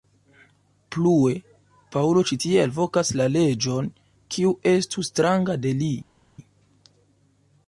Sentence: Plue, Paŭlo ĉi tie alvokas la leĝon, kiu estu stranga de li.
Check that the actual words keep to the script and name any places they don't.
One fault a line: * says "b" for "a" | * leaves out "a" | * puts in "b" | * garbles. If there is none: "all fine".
all fine